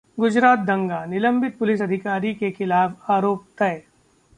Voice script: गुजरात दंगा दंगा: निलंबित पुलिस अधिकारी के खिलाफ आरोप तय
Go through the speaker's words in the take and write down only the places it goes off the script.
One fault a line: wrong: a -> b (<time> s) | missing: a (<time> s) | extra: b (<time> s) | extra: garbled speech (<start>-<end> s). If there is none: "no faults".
missing: दंगा (1.0 s)